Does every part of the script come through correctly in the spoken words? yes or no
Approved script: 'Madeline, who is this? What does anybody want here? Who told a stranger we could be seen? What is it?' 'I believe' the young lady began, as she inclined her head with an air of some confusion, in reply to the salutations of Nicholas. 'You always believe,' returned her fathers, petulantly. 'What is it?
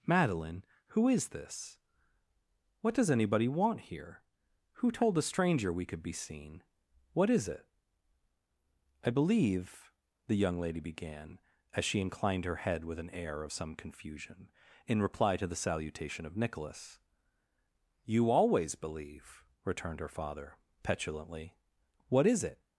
no